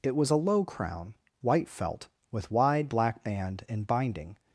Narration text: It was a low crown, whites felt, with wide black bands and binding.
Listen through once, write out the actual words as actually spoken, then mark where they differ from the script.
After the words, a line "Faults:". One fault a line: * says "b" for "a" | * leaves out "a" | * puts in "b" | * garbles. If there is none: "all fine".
It was a low crown, white felt, with wide black band and binding.
Faults:
* says "white" for "whites"
* says "band" for "bands"